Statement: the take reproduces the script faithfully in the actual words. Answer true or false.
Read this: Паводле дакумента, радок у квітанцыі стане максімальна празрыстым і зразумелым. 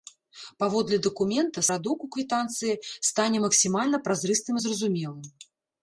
true